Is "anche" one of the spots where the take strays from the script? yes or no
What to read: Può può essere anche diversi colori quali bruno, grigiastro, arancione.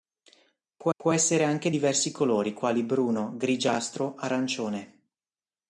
no